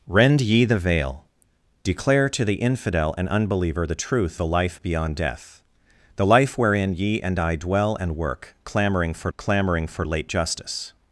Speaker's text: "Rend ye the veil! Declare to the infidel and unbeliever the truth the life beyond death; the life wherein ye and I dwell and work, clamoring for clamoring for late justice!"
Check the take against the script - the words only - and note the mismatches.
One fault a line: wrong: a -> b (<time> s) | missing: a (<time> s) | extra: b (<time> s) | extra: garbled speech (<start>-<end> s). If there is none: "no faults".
no faults